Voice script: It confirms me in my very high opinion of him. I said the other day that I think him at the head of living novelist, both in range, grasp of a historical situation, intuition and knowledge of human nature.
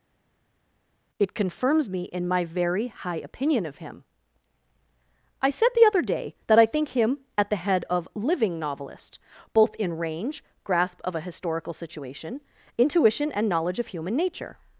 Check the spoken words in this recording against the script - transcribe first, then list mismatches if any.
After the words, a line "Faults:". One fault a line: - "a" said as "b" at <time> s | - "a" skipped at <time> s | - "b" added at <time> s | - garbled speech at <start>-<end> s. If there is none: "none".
It confirms me in my very high opinion of him. I said the other day that I think him at the head of living novelist, both in range, grasp of a historical situation, intuition and knowledge of human nature.
Faults:
none